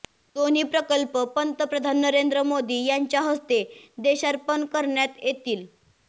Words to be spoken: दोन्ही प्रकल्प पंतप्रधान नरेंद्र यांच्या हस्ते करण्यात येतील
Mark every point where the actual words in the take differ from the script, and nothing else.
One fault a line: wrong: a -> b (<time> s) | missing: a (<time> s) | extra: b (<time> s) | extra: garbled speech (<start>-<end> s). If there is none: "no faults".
extra: मोदी (2.4 s)
extra: देशार्पण (4.0 s)